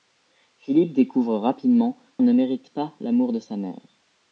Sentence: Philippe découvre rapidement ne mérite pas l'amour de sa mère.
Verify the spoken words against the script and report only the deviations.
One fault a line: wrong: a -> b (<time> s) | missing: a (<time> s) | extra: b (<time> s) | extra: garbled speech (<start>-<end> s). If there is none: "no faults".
no faults